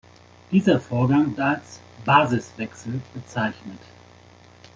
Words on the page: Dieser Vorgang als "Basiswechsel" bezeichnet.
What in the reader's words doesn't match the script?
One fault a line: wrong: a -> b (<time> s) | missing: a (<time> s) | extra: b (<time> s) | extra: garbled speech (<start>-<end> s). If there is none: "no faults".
no faults